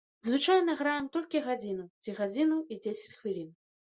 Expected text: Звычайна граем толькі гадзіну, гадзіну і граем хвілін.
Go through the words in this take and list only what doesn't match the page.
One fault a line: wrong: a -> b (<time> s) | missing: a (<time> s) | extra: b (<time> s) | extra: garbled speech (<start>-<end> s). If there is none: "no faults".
extra: ці (2.0 s)
wrong: граем -> дзесяць (2.9 s)